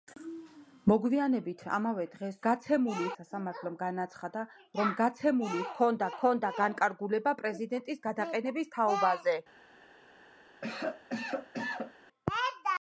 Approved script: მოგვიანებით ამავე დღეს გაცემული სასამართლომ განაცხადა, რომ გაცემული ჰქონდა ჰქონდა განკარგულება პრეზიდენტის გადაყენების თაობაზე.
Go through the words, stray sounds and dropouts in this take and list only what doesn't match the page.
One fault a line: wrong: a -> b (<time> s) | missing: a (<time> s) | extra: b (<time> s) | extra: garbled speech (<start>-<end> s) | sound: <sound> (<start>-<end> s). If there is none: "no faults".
sound: cough (10.6-11.9 s)